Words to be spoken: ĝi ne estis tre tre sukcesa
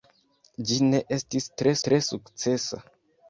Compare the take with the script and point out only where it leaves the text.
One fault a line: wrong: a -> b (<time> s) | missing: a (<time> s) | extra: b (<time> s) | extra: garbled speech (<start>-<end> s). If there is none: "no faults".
no faults